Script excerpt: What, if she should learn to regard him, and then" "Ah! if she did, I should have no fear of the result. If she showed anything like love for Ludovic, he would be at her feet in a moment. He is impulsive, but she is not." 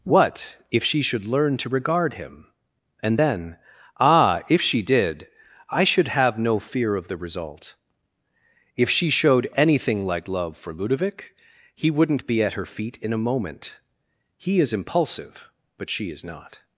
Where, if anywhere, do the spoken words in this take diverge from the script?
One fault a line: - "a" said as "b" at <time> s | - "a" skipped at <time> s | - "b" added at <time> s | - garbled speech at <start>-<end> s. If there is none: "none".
- "would" said as "wouldn't" at 11.9 s